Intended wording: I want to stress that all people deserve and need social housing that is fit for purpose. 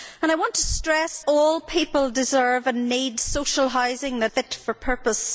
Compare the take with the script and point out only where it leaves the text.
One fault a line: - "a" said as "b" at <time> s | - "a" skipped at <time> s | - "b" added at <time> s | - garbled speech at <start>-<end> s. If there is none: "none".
- "that" skipped at 1.2 s
- "is" skipped at 4.3 s